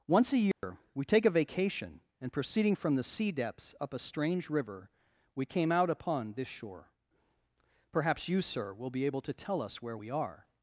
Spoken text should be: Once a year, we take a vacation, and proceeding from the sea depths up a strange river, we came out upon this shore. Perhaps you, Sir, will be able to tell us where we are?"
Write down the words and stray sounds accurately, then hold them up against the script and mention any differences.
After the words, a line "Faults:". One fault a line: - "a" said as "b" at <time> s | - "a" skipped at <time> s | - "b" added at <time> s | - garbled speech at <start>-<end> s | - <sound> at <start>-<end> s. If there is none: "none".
Once a year, we take a vacation, and proceeding from the sea depths up a strange river, we came out upon this shore. Perhaps you, Sir, will be able to tell us where we are?"
Faults:
- dropout at 0.5-0.6 s